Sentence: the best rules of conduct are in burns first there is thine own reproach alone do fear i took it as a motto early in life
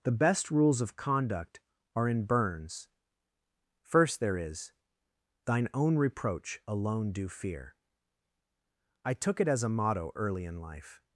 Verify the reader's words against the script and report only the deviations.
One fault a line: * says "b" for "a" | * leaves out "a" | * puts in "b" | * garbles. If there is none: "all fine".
all fine